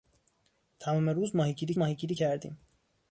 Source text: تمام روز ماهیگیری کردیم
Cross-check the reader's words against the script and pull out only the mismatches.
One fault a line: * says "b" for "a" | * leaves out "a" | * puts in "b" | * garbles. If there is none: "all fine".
* puts in "ماهیگیری"